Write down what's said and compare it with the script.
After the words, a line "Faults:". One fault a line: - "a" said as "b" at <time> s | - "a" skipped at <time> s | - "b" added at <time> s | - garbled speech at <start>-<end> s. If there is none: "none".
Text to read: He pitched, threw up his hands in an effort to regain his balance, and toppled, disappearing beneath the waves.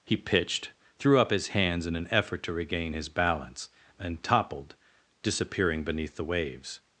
He pitched, threw up his hands in an effort to regain his balance, and toppled, disappearing beneath the waves.
Faults:
none